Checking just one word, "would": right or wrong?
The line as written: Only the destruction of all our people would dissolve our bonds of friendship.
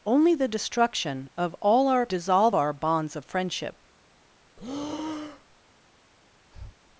wrong